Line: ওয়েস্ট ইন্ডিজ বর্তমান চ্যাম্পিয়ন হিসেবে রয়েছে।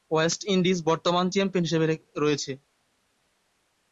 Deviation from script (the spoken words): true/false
false